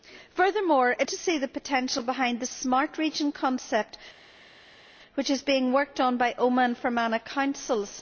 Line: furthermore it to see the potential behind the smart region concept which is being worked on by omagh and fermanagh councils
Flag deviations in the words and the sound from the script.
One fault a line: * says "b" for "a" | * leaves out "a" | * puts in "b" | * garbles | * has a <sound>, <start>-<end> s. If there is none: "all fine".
all fine